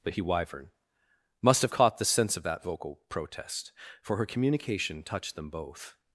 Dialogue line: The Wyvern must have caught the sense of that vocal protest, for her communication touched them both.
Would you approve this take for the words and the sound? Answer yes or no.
no